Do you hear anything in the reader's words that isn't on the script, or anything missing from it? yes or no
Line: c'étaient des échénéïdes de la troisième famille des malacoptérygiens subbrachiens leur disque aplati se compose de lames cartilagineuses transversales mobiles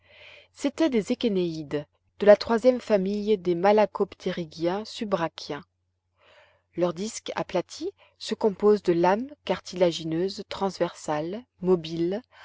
no